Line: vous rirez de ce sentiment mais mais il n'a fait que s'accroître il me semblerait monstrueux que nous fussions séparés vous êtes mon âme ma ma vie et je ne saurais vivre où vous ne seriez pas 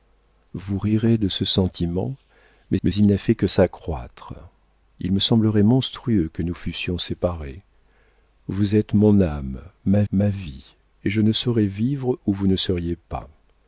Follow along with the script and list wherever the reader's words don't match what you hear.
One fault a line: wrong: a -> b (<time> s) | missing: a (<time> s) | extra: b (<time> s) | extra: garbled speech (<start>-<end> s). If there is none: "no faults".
no faults